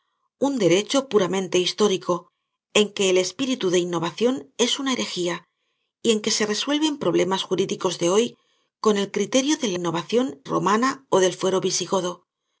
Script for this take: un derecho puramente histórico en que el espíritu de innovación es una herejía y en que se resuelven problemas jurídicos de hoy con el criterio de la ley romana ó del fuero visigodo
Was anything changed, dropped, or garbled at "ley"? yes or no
yes